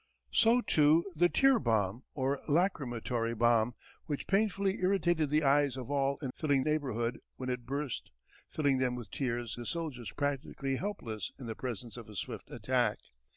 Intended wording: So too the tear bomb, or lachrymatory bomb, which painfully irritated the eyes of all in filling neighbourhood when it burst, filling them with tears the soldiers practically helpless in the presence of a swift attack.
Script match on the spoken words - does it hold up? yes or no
yes